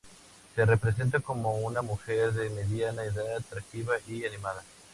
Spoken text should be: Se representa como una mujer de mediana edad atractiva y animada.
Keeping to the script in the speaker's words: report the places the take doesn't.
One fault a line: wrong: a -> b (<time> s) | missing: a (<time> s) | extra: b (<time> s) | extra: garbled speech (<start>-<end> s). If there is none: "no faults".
no faults